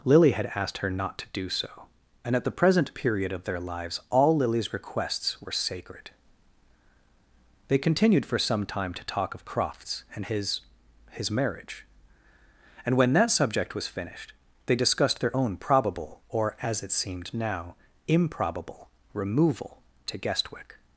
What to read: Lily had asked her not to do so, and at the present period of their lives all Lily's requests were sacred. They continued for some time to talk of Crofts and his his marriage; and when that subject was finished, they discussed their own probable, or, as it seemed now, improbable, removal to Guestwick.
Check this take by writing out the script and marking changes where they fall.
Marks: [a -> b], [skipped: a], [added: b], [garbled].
Lily had asked her not to do so, and at the present period of their lives all Lily's requests were sacred. They continued for some time to talk of Crofts and his his marriage; and when that subject was finished, they discussed their own probable, or, as it seemed now, improbable, removal to Guestwick.